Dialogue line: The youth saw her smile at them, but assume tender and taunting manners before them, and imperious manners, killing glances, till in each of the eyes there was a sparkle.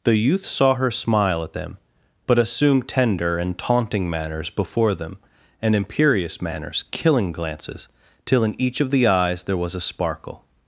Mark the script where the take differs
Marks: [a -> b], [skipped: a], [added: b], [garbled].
The youth saw her smile at them, but assume tender and taunting manners before them, and imperious manners, killing glances, till in each of the eyes there was a sparkle.